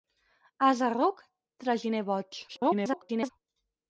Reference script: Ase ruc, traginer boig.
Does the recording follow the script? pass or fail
fail